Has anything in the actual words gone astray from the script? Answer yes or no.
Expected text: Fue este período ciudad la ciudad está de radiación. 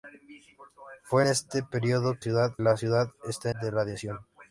no